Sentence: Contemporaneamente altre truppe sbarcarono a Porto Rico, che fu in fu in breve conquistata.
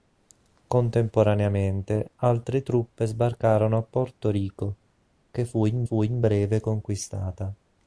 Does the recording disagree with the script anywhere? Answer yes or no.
no